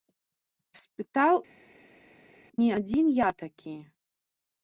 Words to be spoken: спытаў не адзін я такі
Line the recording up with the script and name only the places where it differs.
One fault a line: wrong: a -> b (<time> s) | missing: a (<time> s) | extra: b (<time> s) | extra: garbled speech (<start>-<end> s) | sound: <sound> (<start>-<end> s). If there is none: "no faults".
no faults